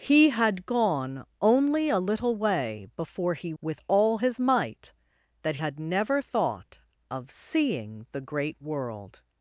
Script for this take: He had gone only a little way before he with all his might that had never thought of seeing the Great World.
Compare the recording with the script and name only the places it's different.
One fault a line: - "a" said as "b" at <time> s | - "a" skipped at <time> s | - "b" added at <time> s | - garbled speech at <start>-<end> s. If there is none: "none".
none